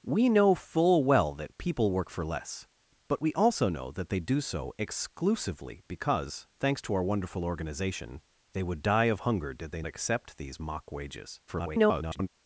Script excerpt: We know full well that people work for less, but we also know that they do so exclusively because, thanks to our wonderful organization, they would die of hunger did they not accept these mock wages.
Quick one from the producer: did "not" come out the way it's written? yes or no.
no